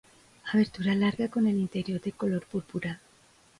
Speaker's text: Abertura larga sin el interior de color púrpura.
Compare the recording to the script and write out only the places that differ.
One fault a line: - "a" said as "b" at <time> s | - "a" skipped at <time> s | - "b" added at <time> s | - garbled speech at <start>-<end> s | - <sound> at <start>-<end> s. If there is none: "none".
- "sin" said as "con" at 1.3 s